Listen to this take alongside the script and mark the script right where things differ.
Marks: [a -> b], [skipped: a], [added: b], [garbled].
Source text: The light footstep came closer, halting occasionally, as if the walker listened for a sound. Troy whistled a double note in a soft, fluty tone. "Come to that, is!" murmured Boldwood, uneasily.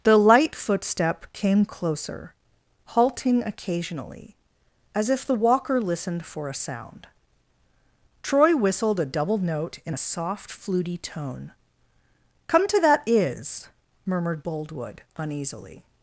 The light footstep came closer, halting occasionally, as if the walker listened for a sound. Troy whistled a double note in a soft, fluty tone. "Come to that, is!" murmured Boldwood, uneasily.